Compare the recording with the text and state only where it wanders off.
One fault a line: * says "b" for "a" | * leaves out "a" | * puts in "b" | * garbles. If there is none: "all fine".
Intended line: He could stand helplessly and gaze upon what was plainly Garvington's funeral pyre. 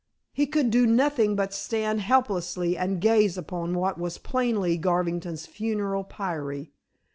* puts in "do nothing but"